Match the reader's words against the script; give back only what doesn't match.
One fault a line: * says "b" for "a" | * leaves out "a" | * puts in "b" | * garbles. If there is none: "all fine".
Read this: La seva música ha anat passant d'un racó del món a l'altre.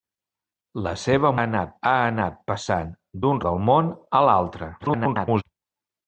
* says "anat" for "música"
* leaves out "racó"
* garbles